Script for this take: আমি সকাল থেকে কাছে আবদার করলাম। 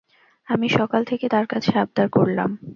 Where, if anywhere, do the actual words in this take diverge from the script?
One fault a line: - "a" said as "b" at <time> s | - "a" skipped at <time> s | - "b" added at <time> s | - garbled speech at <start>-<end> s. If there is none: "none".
- "তার" added at 1.3 s